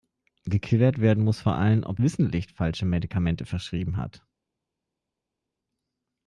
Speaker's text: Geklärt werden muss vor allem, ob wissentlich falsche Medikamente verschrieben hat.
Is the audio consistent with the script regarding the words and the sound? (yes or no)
yes